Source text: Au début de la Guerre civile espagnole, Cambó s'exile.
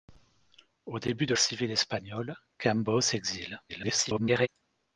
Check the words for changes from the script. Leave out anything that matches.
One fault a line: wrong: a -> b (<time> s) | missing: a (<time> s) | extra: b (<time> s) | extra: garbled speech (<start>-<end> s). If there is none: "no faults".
missing: la Guerre (1.3 s)
extra: garbled speech (3.7-4.5 s)